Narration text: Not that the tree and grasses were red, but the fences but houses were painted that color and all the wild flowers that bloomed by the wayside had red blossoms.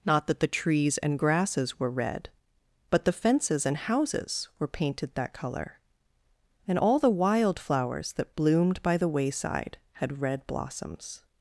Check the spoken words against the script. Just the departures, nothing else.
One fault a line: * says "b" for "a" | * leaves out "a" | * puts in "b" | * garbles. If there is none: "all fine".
* says "trees" for "tree"
* says "and" for "but"